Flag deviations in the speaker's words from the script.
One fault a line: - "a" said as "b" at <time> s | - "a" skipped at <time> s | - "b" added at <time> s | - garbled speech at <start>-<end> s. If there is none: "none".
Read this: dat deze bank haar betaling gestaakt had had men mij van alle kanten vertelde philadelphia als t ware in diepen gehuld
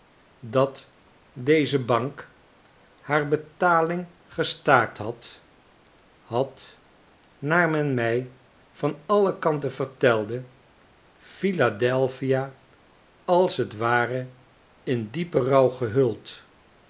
- "naar" added at 7.4 s
- "rouw" added at 15.4 s